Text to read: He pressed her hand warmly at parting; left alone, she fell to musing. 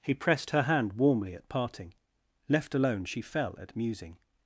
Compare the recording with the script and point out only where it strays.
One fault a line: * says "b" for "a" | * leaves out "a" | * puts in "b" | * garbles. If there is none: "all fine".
* says "at" for "to"